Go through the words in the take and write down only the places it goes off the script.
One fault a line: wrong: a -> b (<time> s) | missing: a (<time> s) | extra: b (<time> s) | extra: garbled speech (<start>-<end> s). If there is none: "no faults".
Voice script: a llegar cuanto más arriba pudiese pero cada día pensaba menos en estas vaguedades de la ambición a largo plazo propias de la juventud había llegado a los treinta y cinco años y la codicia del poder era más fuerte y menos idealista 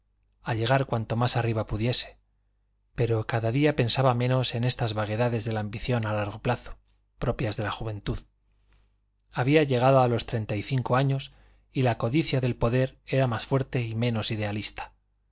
no faults